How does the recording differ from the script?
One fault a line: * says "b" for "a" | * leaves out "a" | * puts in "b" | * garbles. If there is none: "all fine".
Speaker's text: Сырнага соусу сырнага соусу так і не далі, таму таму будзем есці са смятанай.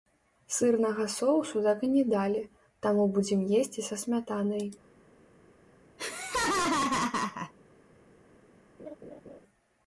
* leaves out "сырнага соусу"
* leaves out "таму"